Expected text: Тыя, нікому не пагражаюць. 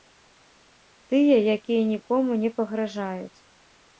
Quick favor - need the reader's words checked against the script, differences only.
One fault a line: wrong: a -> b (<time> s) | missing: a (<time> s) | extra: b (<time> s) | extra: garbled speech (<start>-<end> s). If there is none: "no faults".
extra: якія (1.6 s)